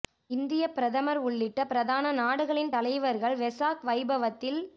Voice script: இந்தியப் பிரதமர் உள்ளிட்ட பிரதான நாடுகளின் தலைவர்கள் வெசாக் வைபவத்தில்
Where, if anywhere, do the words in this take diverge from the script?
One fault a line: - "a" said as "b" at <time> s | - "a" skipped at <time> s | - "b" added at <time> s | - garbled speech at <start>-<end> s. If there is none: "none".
none